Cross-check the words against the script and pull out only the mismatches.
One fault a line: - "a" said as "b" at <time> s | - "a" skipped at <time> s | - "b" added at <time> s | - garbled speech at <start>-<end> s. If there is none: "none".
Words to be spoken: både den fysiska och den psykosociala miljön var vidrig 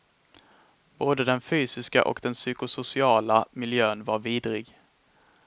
none